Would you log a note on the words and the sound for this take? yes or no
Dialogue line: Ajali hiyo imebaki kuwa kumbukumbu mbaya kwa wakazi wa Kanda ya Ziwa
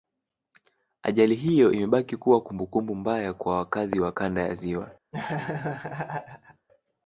yes